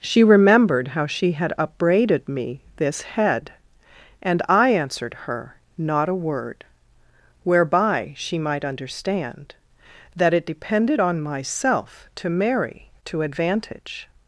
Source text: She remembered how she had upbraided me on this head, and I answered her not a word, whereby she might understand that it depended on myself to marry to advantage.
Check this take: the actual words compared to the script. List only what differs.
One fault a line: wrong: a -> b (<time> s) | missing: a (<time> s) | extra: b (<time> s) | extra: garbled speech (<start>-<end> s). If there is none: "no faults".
missing: on (2.6 s)